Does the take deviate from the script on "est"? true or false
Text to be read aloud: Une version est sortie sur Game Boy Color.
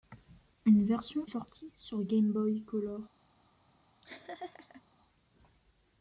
true